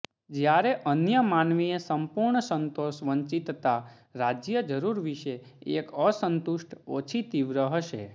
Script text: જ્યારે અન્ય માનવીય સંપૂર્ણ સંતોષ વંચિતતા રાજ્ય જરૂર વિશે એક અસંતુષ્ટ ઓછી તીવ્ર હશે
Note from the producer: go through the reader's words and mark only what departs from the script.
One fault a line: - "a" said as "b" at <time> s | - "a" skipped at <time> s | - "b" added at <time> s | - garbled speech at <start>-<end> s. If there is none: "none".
none